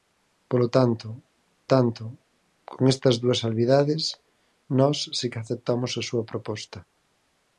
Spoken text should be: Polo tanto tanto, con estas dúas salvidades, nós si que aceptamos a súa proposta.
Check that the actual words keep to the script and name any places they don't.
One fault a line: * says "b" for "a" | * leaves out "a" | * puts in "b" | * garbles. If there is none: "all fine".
all fine